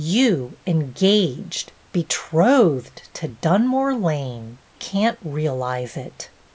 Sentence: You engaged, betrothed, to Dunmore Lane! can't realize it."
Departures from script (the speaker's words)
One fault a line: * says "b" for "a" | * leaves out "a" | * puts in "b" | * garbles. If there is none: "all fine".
all fine